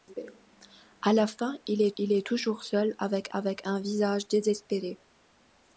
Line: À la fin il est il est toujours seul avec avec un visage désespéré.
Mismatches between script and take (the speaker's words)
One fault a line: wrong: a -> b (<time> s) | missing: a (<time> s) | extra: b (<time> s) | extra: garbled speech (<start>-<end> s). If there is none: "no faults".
no faults